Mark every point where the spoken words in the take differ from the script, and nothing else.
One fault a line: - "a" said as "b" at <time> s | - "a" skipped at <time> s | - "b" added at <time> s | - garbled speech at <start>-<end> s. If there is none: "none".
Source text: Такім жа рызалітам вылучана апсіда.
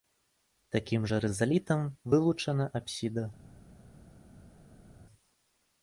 none